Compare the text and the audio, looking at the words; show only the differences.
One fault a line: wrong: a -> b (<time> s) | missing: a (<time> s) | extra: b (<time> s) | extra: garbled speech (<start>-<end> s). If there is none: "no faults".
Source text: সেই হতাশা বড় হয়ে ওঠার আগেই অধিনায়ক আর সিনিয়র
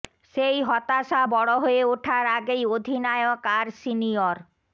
no faults